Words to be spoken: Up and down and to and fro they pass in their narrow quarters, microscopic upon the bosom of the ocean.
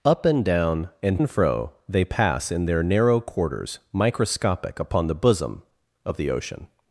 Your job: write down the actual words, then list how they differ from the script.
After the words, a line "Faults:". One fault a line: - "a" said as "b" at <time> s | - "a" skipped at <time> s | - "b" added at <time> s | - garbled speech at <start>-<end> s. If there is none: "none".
Up and down and and fro they pass in their narrow quarters, microscopic upon the bosom of the ocean.
Faults:
- "to" skipped at 1.2 s